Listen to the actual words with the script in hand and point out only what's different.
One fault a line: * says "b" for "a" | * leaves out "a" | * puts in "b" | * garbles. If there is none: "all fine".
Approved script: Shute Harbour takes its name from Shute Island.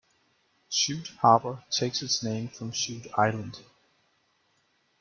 all fine